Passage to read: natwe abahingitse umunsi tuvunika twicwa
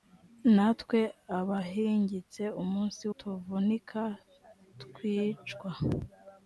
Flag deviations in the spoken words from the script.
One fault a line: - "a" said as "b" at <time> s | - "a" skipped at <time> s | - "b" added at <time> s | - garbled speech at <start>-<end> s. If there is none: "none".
none